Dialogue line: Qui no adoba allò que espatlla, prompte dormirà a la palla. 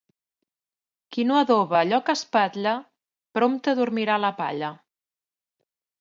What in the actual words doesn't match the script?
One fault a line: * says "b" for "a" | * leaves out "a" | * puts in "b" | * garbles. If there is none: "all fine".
all fine